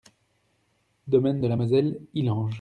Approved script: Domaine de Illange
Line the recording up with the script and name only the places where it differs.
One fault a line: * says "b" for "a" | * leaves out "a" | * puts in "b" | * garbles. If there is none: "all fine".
* puts in "la Moselle"